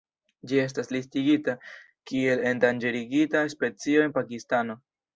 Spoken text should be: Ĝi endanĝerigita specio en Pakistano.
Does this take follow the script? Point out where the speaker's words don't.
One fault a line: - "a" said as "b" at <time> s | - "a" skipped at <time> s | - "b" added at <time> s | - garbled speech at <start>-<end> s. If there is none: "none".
- "estas listigita kiel" added at 0.6 s